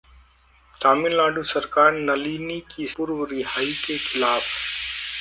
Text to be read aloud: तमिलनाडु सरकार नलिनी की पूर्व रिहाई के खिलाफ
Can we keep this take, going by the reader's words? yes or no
yes